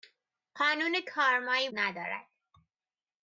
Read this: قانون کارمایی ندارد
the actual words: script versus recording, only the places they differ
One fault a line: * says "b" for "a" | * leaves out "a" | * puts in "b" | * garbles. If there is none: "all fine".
all fine